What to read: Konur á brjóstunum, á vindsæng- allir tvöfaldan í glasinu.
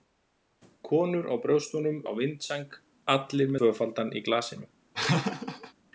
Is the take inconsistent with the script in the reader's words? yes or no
no